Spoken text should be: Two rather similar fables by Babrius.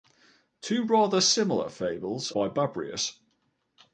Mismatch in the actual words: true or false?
false